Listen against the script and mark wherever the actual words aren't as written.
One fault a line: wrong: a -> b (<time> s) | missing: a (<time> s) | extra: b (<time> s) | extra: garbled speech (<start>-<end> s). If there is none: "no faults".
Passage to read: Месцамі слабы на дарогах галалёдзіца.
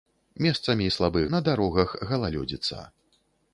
no faults